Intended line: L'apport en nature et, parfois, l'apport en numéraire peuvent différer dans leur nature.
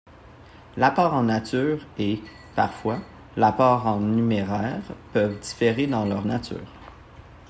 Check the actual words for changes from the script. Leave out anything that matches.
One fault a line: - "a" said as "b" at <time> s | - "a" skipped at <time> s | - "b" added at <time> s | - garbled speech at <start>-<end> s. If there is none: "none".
none